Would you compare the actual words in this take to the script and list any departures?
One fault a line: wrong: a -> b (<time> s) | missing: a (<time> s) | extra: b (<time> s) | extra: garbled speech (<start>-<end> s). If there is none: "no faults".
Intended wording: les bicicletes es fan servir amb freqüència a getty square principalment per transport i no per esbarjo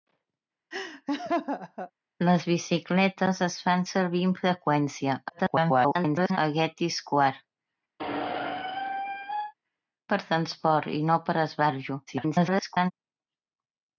extra: garbled speech (5.3-6.4 s)
missing: principalment (7.4 s)
extra: garbled speech (12.1-12.9 s)